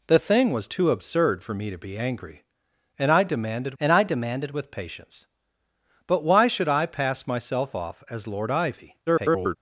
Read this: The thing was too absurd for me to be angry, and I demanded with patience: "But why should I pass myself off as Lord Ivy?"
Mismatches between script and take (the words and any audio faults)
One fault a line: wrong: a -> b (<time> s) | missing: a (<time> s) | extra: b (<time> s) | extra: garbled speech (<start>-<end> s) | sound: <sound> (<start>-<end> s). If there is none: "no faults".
extra: and I demanded (3.8 s)
extra: garbled speech (9.1-9.6 s)